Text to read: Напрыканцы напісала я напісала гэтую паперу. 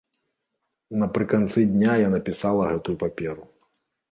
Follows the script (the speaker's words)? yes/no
no